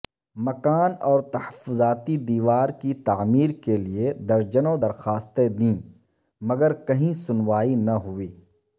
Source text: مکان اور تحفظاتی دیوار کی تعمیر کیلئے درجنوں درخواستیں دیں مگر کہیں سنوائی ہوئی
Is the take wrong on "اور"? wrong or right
right